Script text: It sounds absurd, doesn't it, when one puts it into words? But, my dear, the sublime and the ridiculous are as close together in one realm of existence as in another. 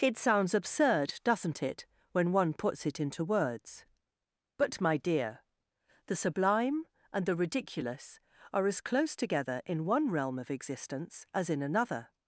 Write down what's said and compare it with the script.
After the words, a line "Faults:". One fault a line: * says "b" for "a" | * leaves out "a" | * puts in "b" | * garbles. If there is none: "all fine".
It sounds absurd, doesn't it, when one puts it into words? But, my dear, the sublime and the ridiculous are as close together in one realm of existence as in another.
Faults:
all fine